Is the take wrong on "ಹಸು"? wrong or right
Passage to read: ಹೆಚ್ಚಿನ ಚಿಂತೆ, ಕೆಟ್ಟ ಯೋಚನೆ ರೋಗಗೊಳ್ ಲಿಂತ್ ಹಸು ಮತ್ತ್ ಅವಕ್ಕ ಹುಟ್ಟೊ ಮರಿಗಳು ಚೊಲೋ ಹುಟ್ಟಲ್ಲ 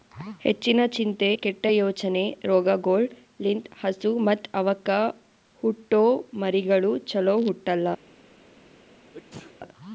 right